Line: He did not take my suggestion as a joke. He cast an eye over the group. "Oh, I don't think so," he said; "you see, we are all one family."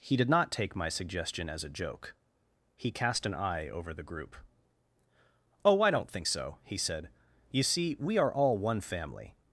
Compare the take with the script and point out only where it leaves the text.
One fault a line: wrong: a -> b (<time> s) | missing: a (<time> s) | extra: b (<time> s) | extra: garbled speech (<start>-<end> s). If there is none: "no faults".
no faults